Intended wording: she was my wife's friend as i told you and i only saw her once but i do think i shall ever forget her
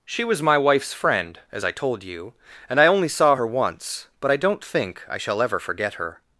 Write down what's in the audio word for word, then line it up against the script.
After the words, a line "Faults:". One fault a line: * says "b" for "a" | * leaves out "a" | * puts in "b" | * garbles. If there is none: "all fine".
she was my wife's friend as i told you and i only saw her once but i don't think i shall ever forget her
Faults:
* says "don't" for "do"